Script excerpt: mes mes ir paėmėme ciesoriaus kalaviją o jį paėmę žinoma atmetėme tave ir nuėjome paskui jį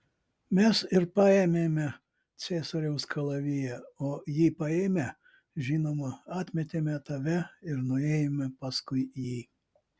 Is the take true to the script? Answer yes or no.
no